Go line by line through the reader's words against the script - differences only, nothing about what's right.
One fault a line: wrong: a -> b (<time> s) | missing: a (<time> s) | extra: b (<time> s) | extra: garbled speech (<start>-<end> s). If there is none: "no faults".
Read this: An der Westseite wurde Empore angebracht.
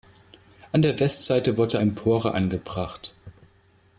no faults